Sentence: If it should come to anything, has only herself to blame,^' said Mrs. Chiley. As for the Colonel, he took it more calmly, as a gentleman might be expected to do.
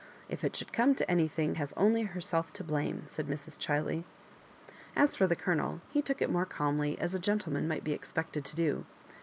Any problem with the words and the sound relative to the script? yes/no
no